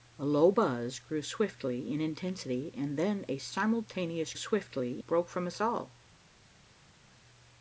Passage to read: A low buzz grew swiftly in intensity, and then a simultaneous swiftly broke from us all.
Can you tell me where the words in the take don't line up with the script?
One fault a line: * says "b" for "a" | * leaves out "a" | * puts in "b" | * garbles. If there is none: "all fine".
all fine